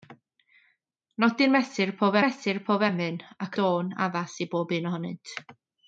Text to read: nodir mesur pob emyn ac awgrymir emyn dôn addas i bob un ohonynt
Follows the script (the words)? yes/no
no